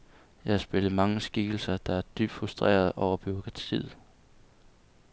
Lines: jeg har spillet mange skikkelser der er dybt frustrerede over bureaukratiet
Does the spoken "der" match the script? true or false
true